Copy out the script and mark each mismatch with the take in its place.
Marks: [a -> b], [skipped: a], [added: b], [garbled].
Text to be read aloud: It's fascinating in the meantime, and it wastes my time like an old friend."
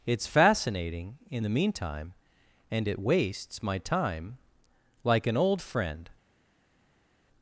It's fascinating in the meantime, and it wastes my time like an old friend."